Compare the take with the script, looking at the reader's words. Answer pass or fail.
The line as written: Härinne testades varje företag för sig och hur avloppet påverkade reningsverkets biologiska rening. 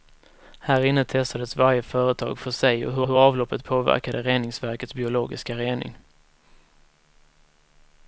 fail